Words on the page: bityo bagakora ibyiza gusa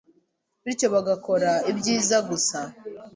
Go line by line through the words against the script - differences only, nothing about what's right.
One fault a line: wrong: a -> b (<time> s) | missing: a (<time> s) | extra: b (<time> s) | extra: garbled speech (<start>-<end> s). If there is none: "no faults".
no faults